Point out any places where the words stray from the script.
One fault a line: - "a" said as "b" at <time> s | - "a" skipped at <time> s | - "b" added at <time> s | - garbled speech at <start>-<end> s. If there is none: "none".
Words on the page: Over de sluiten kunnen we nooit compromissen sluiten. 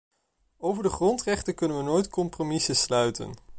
- "sluiten" said as "grondrechten" at 0.9 s